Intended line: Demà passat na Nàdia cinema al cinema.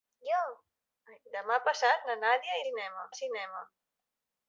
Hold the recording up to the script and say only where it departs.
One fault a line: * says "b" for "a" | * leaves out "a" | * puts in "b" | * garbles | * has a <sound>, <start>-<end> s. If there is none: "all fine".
all fine